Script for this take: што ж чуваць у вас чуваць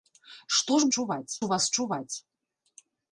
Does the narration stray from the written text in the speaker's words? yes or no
no